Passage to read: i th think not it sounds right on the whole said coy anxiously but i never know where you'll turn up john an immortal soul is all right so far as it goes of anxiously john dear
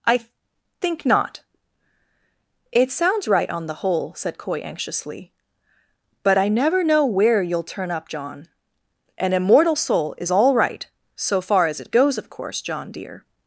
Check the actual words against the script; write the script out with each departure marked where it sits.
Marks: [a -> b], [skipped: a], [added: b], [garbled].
i th think not it sounds right on the whole said coy anxiously but i never know where you'll turn up john an immortal soul is all right so far as it goes of [anxiously -> course] john dear